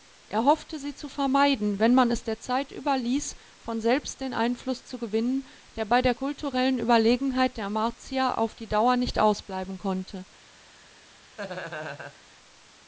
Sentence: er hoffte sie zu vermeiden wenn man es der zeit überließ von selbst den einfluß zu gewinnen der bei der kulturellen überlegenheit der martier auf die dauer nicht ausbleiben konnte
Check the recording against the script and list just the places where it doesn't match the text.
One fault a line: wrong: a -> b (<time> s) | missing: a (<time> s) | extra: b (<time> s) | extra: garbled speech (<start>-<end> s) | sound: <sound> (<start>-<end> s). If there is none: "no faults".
sound: laugh (11.4-12.2 s)